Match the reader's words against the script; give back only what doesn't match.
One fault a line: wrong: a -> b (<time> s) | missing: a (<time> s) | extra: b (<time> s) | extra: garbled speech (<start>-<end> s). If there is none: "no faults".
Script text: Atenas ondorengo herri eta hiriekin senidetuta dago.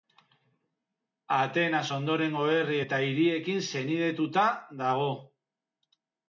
no faults